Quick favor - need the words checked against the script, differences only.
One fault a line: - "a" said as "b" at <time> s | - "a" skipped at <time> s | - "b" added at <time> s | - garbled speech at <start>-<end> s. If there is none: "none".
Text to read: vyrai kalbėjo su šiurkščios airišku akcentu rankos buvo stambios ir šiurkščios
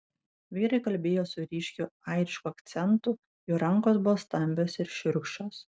- "šiurkščios" said as "ryškiu" at 1.5 s
- "jų" added at 3.5 s